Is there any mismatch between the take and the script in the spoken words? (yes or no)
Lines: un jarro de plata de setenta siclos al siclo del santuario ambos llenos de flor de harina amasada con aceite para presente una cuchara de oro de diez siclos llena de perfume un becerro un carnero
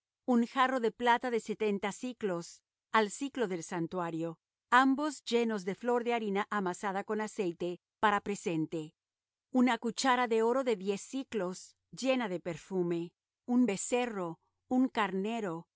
no